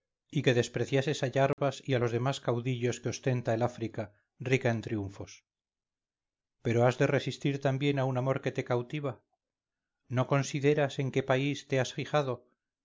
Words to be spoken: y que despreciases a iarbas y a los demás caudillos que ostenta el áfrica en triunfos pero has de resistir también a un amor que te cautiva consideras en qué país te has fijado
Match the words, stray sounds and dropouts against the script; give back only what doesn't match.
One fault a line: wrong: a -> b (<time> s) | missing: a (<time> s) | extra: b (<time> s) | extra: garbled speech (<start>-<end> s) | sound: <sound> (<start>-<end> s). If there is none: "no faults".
sound: dropout (1.5-1.6 s)
extra: rica (4.4 s)
extra: no (10.1 s)